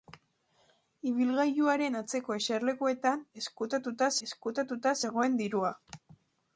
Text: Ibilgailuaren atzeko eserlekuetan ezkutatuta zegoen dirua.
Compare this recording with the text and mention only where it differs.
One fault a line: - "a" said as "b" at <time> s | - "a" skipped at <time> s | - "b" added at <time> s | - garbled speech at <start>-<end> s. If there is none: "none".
- "ezkutatuta" added at 4.3 s